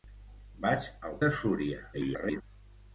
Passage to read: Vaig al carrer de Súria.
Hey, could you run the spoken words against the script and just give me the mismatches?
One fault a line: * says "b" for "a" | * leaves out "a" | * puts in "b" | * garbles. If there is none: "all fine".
* leaves out "carrer"
* garbles